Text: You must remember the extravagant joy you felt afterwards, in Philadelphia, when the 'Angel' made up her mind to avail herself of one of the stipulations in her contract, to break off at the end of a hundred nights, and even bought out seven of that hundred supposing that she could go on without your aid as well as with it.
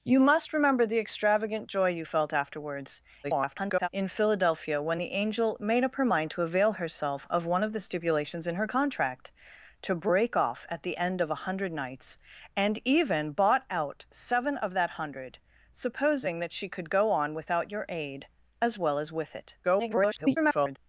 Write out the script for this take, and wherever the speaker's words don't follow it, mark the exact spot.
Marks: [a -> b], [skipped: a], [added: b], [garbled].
You must remember the extravagant joy you felt afterwards, [garbled] in Philadelphia, when the 'Angel' made up her mind to avail herself of one of the stipulations in her contract, to break off at the end of a hundred nights, and even bought out seven of that hundred supposing that she could go on without your aid as well as with it. [garbled]